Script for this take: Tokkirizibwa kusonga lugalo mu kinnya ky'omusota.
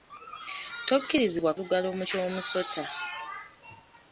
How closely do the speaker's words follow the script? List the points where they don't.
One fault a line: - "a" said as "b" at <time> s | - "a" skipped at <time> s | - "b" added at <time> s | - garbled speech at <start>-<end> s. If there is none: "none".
- "kusonga" skipped at 1.5 s
- "kinnya" skipped at 2.0 s